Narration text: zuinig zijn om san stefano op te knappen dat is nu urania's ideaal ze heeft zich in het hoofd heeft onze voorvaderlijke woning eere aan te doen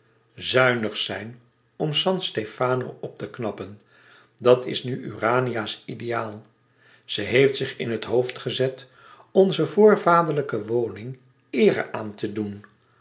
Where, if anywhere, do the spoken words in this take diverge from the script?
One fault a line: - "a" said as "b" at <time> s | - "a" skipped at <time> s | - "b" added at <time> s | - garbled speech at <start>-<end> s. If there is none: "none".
- "heeft" said as "gezet" at 8.4 s